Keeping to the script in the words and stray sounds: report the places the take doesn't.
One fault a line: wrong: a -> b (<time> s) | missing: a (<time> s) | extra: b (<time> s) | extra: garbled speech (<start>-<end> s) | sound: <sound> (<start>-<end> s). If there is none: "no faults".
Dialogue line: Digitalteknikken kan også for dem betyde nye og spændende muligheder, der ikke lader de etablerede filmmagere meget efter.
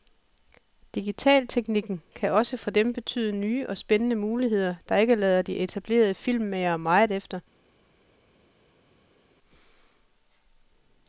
no faults